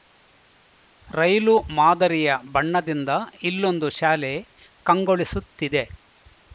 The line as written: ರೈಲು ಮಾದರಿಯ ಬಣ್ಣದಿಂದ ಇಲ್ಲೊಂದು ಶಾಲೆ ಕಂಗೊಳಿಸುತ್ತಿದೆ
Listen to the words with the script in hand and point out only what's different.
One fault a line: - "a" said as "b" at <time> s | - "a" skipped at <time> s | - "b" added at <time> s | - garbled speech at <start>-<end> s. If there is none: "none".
none